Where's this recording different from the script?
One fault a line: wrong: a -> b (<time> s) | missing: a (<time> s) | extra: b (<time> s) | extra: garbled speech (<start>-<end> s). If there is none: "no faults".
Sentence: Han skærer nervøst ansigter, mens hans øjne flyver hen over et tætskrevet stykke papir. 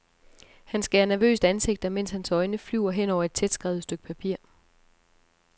no faults